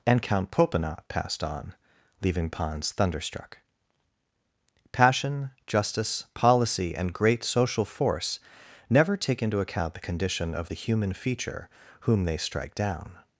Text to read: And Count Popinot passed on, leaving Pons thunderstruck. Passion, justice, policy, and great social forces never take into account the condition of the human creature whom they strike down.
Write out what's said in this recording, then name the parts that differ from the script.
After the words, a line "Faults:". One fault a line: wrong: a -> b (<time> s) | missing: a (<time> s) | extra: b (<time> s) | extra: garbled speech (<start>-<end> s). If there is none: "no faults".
And Count Popinot passed on, leaving Pons thunderstruck. Passion, justice, policy, and great social force never take into account the condition of the human feature whom they strike down.
Faults:
wrong: forces -> force (7.8 s)
wrong: creature -> feature (11.1 s)